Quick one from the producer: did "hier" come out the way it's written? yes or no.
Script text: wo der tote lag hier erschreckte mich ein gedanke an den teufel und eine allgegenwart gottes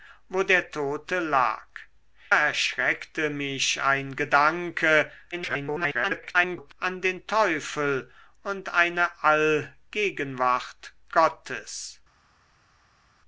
no